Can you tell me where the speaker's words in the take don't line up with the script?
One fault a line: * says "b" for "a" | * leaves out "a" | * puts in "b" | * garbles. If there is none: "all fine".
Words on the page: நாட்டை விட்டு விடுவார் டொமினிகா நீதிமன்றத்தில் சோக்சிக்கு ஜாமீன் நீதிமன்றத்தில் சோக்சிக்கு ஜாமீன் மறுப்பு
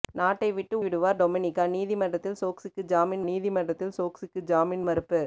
all fine